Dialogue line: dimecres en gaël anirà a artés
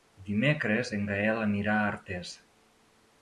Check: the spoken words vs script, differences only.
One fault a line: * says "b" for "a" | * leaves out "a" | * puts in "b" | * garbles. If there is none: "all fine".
all fine